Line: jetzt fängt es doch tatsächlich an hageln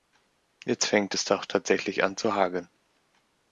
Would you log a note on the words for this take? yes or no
yes